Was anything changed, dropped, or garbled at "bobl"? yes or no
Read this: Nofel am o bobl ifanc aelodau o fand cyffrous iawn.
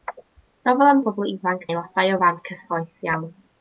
no